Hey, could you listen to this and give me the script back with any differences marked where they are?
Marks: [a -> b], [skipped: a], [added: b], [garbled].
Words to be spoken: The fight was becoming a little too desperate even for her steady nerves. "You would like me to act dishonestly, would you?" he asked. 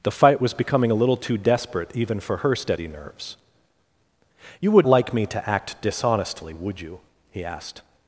The fight was becoming a little too desperate even for her steady nerves. "You would like me to act dishonestly, would you?" he asked.